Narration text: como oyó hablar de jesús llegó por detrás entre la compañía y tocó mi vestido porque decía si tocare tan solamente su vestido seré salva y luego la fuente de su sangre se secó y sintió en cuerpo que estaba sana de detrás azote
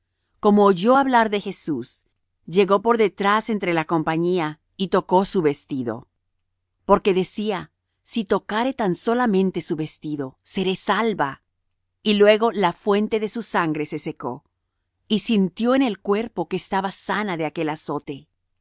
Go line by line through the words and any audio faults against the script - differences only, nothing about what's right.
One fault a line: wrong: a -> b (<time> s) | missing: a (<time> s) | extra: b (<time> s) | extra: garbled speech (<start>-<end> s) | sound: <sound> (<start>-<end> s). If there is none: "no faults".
wrong: mi -> su (5.2 s)
extra: el (15.8 s)
wrong: detrás -> aquel (17.4 s)